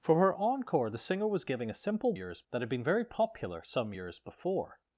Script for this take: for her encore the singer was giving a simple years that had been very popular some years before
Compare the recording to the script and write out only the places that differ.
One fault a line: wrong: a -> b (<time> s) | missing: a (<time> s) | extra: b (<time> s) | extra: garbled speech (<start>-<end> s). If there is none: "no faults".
no faults